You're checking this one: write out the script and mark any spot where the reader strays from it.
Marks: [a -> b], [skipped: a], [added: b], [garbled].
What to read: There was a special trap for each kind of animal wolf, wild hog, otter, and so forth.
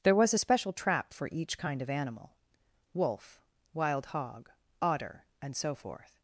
There was a special trap for each kind of animal wolf, wild hog, otter, and so forth.